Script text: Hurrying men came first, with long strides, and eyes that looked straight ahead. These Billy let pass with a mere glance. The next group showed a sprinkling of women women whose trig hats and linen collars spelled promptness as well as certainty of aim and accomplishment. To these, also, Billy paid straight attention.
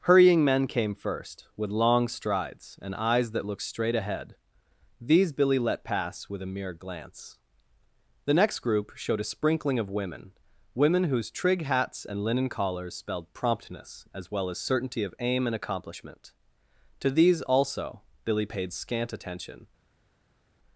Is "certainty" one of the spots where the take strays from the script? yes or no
no